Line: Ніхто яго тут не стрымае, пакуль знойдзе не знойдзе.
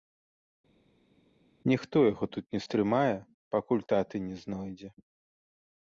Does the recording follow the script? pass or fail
fail